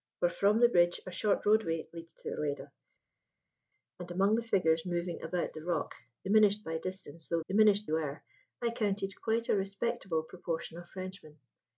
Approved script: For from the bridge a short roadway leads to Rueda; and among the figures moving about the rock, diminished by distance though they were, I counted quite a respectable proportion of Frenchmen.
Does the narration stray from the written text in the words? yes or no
yes